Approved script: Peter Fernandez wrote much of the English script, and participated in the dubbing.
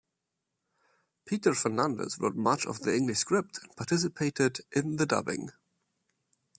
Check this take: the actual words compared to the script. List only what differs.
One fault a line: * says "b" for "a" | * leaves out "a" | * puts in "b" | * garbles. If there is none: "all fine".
all fine